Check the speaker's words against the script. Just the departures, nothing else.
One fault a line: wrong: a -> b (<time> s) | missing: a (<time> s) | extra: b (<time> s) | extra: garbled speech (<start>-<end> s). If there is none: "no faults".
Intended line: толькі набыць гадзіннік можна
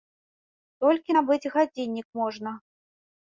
no faults